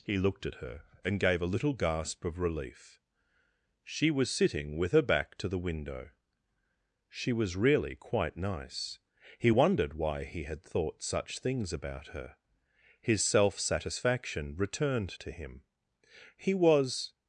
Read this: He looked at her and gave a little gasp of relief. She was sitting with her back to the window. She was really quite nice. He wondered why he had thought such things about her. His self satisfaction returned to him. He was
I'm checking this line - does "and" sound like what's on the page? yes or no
yes